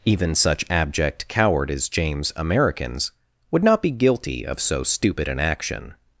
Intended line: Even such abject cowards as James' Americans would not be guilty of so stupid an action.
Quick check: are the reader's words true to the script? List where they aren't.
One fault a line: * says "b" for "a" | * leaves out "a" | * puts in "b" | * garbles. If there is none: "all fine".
* says "coward" for "cowards"